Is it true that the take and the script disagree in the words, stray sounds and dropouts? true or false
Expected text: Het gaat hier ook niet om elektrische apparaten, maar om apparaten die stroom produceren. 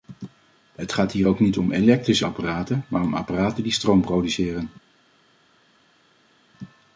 false